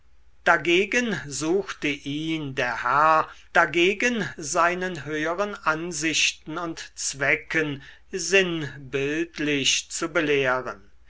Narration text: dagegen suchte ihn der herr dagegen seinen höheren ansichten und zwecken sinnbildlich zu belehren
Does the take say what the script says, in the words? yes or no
yes